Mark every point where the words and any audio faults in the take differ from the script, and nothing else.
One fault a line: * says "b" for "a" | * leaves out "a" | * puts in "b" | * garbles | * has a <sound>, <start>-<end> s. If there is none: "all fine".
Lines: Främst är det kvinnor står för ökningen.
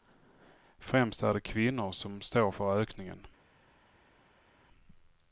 * puts in "som"